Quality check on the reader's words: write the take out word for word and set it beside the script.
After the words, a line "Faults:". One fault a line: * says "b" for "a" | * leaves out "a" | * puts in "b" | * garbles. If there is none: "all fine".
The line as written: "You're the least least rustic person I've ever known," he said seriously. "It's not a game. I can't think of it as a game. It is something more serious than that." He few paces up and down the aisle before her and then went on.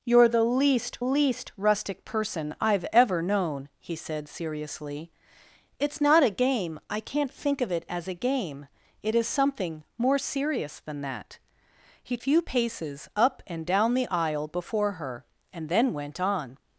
"You're the least least rustic person I've ever known," he said seriously. "It's not a game. I can't think of it as a game. It is something more serious than that." He few paces up and down the aisle before her and then went on.
Faults:
all fine